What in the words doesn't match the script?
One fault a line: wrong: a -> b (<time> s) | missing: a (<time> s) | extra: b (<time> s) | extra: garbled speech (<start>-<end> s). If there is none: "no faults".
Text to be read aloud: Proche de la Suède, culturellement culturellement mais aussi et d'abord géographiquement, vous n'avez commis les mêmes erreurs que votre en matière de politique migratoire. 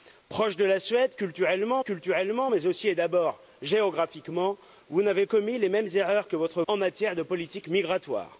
no faults